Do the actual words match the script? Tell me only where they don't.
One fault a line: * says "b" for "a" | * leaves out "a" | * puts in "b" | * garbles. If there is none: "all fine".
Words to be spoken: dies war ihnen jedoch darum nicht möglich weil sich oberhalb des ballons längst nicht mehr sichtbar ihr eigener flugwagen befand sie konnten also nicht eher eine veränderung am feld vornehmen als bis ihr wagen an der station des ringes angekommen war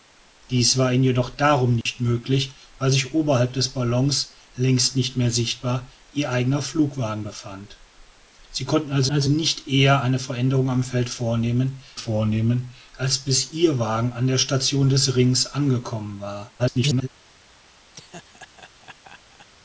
* puts in "also"
* puts in "vornehmen"
* garbles